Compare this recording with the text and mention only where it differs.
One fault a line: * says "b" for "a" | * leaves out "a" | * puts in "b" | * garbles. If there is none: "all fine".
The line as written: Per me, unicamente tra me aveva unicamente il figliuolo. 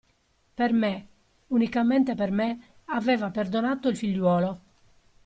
* says "per" for "tra"
* says "perdonato" for "unicamente"